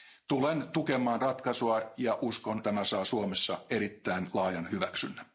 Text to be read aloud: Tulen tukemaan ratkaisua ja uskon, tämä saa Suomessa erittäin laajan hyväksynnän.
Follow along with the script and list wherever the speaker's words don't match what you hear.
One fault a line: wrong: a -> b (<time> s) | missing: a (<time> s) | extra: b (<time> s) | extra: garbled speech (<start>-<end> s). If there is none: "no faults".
no faults